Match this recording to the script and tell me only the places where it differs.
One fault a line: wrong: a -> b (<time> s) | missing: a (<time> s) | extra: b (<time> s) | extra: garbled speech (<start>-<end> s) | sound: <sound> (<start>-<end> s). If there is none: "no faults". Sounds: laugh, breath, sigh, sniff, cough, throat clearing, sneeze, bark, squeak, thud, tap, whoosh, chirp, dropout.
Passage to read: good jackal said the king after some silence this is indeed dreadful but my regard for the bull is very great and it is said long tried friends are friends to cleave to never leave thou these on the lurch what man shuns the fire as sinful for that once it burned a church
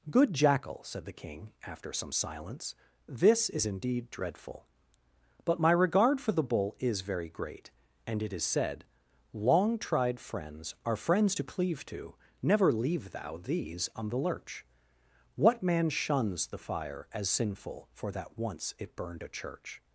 no faults